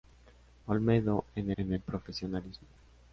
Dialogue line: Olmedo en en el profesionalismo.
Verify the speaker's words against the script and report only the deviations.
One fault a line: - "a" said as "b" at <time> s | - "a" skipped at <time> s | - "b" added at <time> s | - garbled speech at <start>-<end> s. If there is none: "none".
none